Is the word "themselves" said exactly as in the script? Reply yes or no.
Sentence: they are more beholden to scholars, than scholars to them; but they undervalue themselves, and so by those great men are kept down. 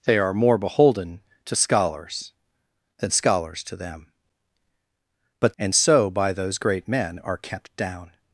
no